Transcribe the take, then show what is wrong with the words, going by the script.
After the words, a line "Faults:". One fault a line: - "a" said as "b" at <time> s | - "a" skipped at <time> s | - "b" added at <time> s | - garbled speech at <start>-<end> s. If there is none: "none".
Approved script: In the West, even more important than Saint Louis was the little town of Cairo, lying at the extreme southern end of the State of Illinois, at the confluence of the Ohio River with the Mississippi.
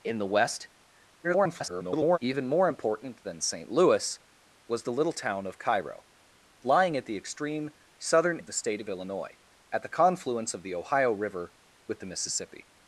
In the West, [garbled] even more important than Saint Louis was the little town of Cairo, lying at the extreme southern of the State of Illinois, at the confluence of the Ohio River with the Mississippi.
Faults:
- garbled speech at 1.2-2.2 s
- "end" skipped at 8.4 s